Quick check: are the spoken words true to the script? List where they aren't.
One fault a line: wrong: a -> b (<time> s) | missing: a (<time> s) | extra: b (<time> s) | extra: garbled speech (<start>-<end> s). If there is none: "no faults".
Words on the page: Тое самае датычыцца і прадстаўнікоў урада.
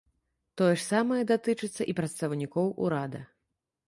extra: ж (0.7 s)